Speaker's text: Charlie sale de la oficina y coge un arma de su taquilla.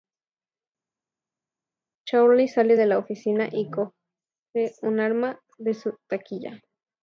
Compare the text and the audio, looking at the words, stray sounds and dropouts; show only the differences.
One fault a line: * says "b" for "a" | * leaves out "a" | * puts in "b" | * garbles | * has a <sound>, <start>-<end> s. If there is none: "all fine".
all fine